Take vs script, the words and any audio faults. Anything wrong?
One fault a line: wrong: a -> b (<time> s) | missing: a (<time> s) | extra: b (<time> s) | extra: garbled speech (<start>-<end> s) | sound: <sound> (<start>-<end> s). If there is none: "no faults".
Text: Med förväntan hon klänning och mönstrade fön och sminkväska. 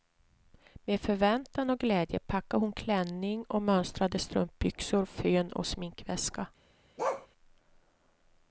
extra: och glädje packade (1.7 s)
extra: strumpbyxor (4.2 s)
sound: bark (7.0-7.3 s)